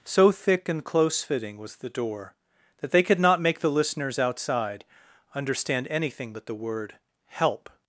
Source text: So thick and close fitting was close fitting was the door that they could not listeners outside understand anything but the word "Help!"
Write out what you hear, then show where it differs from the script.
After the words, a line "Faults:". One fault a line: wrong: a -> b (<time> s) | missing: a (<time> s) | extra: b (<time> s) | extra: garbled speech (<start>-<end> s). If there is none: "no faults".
So thick and close fitting was the door that they could not make the listeners outside understand anything but the word "Help!"
Faults:
missing: close fitting was (1.8 s)
extra: make the (3.4 s)